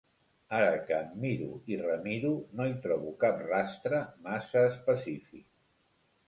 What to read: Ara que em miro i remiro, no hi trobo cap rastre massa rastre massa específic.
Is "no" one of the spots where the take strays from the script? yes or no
no